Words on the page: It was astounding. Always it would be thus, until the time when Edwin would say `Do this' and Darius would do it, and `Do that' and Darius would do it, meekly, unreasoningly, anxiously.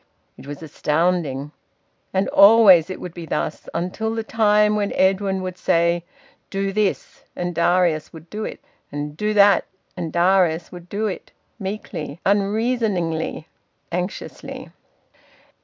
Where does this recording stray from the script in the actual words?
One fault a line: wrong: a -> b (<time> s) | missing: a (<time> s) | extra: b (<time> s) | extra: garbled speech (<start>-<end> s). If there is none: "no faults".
extra: And (2.1 s)